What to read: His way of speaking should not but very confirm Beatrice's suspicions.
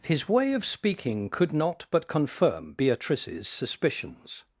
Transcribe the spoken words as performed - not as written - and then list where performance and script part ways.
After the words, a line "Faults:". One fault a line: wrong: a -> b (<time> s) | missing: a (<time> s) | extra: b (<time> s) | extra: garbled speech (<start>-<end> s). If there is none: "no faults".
His way of speaking could not but confirm Beatrice's suspicions.
Faults:
wrong: should -> could (1.3 s)
missing: very (2.1 s)